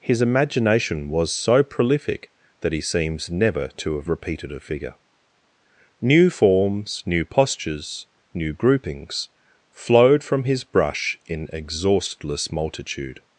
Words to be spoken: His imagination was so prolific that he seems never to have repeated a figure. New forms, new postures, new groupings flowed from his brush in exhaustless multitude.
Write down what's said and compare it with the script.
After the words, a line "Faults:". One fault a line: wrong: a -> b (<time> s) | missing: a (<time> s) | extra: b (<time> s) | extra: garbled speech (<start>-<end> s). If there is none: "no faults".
His imagination was so prolific that he seems never to have repeated a figure. New forms, new postures, new groupings flowed from his brush in exhaustless multitude.
Faults:
no faults